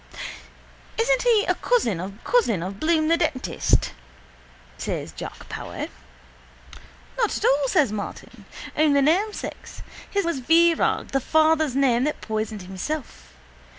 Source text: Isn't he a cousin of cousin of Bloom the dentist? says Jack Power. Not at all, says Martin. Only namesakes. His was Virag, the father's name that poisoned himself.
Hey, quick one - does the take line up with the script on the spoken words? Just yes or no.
yes